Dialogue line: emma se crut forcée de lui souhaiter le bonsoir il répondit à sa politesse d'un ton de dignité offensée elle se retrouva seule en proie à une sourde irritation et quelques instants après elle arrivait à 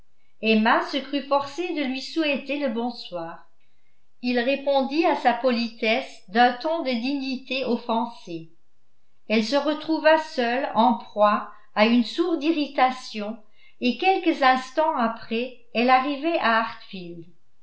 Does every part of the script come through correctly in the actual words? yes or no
yes